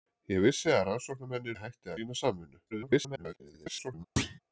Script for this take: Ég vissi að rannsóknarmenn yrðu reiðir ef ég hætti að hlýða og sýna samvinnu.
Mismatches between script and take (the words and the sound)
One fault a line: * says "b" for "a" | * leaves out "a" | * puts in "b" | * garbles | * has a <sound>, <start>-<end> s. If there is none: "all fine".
* leaves out "yrðu reiðir ef"
* leaves out "að hlýða og"
* garbles
* has a thud, 4.2-4.4 s